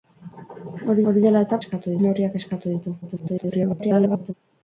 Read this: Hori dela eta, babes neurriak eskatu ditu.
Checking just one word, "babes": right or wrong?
wrong